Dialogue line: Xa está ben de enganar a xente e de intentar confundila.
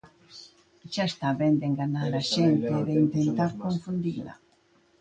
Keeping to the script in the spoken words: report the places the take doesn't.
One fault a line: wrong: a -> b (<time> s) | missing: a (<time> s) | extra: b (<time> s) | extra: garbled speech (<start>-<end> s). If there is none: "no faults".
no faults